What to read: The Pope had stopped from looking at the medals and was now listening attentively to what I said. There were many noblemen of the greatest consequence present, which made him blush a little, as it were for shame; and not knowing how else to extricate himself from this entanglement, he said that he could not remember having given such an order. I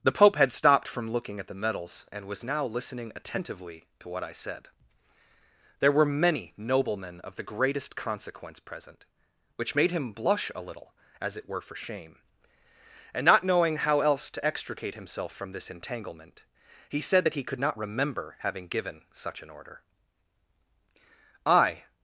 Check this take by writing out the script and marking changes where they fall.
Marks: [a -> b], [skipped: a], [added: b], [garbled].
The Pope had stopped from looking at the medals and was now listening attentively to what I said. There were many noblemen of the greatest consequence present, which made him blush a little, as it were for shame; and not knowing how else to extricate himself from this entanglement, he said that he could not remember having given such an order. I